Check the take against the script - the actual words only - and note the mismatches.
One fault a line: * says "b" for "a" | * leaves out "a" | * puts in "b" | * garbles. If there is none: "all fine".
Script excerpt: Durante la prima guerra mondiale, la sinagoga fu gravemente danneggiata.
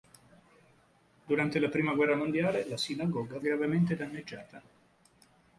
* leaves out "fu"